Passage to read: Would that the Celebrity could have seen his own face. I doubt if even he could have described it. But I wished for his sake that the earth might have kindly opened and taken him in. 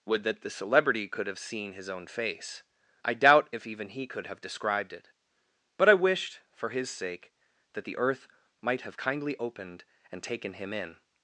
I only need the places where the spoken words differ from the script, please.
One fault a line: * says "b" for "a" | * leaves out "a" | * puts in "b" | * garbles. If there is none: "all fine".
all fine